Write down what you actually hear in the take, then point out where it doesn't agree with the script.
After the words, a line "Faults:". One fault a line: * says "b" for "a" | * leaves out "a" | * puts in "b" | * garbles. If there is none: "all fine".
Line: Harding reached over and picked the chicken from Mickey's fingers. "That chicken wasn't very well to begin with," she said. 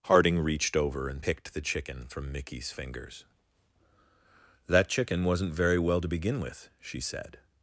Harding reached over and picked the chicken from Mickey's fingers. "That chicken wasn't very well to begin with," she said.
Faults:
all fine